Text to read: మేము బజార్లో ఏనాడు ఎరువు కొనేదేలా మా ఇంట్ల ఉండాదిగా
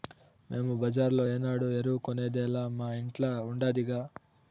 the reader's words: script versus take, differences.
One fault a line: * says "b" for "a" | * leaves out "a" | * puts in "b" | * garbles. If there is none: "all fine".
all fine